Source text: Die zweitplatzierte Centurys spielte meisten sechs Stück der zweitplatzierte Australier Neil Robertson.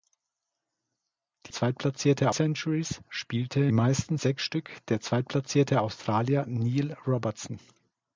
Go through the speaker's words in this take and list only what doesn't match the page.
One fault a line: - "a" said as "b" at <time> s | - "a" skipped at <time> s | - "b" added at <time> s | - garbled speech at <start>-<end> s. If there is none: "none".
none